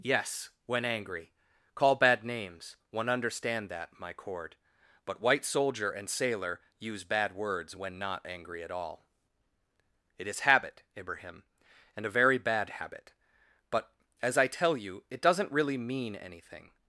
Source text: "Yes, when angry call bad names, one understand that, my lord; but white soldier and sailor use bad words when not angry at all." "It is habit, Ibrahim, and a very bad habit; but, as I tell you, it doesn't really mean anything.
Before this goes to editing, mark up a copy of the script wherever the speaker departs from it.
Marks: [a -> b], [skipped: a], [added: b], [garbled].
"Yes, when angry call bad names, one understand that, my [lord; -> cord] but white soldier and sailor use bad words when not angry at all." "It is habit, Ibrahim, and a very bad habit; but, as I tell you, it doesn't really mean anything.